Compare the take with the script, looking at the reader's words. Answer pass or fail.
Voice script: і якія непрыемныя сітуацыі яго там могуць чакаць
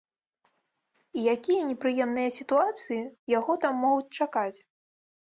pass